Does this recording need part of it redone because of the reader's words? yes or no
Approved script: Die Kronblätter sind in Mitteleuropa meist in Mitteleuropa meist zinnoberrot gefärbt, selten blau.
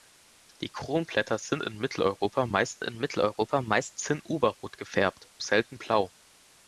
no